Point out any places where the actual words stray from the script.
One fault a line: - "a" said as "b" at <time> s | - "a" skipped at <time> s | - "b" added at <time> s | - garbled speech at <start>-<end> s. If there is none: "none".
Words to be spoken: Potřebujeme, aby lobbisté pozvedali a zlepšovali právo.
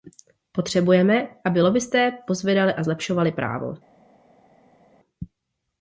none